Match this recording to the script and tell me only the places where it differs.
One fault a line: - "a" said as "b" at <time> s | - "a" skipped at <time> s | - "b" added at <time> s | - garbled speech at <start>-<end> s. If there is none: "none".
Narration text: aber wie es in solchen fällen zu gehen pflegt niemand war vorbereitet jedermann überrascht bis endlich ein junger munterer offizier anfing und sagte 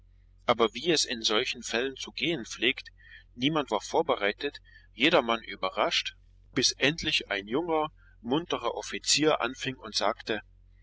none